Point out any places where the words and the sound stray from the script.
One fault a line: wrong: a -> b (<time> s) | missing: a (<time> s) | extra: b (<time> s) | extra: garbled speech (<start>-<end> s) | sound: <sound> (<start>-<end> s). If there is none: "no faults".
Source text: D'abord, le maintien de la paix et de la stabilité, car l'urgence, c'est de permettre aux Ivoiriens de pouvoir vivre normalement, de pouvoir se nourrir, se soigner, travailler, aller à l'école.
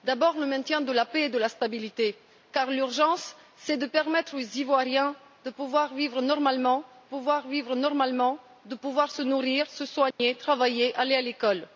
extra: pouvoir vivre normalement (7.0 s)
sound: dropout (10.1-10.2 s)